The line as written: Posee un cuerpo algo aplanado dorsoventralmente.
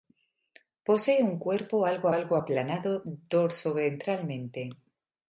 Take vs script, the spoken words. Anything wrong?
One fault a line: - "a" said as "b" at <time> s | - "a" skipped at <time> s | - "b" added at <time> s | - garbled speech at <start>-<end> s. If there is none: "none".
- "algo" added at 2.1 s